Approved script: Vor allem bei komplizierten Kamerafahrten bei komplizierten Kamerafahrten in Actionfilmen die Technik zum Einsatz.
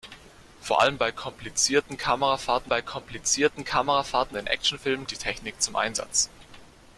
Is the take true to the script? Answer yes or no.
yes